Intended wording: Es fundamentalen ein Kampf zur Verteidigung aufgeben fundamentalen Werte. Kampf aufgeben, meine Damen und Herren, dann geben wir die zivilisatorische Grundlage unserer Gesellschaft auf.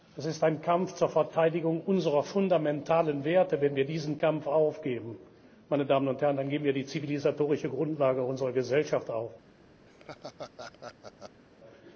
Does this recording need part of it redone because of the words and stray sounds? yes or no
yes